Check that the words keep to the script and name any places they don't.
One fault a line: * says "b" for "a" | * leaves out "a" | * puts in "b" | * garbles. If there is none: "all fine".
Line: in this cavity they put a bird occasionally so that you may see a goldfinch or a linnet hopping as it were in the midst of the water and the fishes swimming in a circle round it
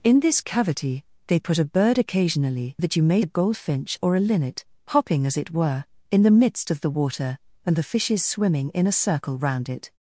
* leaves out "so"
* leaves out "see"